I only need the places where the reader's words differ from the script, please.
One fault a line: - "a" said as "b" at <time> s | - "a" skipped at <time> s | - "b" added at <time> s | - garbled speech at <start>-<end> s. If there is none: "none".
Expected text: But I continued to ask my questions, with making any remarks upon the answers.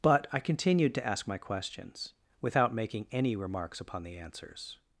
- "with" said as "without" at 2.4 s